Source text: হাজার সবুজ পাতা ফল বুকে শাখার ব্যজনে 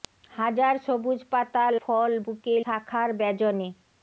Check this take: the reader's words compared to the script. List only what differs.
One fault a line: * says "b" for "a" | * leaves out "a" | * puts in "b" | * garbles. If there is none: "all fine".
all fine